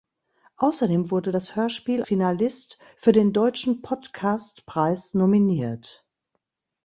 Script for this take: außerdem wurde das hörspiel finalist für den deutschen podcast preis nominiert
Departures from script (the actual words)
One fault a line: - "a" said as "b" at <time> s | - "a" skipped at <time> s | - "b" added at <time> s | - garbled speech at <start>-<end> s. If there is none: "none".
none